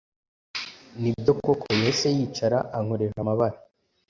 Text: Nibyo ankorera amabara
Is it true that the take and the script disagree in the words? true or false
true